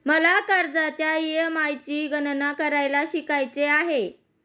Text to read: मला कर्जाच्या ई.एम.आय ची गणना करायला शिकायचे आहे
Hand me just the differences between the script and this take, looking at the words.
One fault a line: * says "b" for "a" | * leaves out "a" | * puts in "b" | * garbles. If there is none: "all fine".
all fine